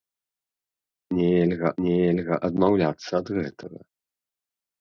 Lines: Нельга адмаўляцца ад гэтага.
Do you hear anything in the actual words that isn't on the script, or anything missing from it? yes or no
yes